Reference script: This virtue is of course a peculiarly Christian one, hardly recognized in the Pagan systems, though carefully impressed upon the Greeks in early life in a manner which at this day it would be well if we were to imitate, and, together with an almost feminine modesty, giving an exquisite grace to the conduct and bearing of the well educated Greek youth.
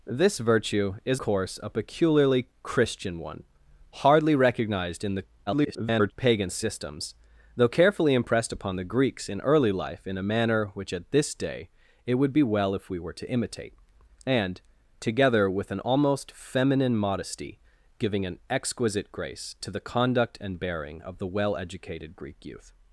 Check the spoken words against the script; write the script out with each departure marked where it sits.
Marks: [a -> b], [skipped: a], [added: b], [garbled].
This virtue is [skipped: of] course a peculiarly Christian one, hardly recognized in the [garbled] Pagan systems, though carefully impressed upon the Greeks in early life in a manner which at this day it would be well if we were to imitate, and, together with an almost feminine modesty, giving an exquisite grace to the conduct and bearing of the well educated Greek youth.